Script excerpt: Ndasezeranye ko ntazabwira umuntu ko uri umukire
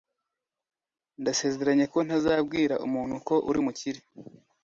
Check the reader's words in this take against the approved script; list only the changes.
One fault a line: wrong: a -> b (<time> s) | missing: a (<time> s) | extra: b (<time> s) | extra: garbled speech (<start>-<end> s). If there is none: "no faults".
no faults